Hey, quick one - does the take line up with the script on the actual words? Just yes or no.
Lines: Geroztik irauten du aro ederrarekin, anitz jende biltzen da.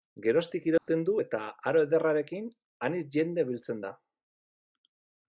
no